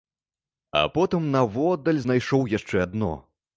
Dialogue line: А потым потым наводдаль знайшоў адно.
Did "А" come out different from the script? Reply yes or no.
no